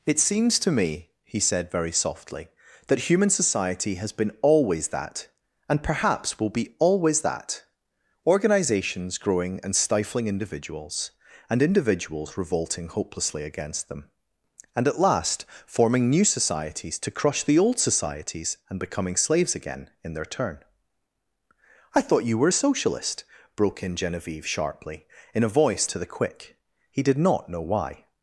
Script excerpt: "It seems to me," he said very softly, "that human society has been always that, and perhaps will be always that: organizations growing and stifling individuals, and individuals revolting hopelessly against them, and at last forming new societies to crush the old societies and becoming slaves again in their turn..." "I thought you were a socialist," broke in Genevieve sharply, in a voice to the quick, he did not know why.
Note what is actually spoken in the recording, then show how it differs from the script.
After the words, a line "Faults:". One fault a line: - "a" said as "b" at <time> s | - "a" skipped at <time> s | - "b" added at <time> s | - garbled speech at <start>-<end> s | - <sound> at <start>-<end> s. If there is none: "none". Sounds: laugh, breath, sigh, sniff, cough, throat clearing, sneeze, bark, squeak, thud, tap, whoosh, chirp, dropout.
"It seems to me," he said very softly, "that human society has been always that, and perhaps will be always that: organizations growing and stifling individuals, and individuals revolting hopelessly against them, and at last forming new societies to crush the old societies and becoming slaves again in their turn..." "I thought you were a socialist," broke in Genevieve sharply, in a voice to the quick, he did not know why.
Faults:
none